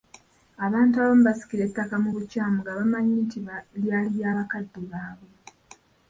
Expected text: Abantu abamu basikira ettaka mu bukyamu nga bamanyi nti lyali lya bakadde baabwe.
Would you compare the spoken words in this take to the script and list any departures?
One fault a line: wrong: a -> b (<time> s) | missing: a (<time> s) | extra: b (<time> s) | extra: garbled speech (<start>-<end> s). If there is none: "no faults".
no faults